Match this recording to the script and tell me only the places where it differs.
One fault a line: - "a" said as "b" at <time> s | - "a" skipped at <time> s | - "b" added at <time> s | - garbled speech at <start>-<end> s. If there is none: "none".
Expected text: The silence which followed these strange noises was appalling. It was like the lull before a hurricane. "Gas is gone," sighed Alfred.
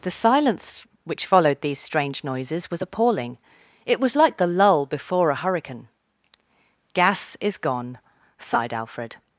none